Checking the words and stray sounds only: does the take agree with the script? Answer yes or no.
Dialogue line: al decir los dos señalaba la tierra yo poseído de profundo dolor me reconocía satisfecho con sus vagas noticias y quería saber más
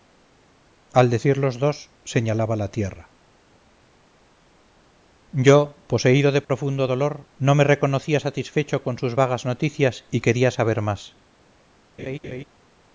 no